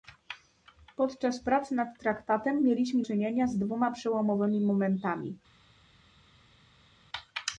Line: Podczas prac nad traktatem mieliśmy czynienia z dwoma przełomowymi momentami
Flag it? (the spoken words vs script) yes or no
no